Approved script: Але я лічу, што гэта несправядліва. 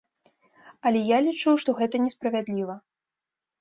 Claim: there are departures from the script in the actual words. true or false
false